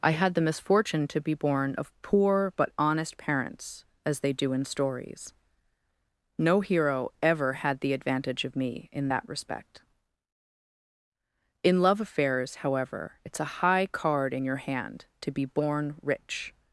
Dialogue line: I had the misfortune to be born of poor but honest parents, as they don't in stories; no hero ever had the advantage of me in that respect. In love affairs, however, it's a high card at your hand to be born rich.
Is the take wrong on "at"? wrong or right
wrong